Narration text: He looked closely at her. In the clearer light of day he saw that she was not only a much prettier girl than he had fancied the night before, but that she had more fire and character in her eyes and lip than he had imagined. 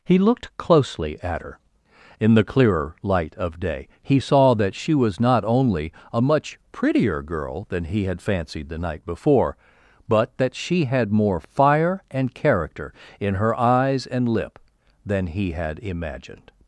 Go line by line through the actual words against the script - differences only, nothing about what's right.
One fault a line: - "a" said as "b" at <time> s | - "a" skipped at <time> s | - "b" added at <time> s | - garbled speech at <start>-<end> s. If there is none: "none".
none